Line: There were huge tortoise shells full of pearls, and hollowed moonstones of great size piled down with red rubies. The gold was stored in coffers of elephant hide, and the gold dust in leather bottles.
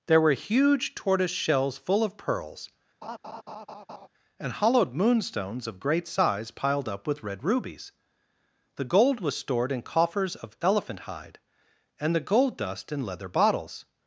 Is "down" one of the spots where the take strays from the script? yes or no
yes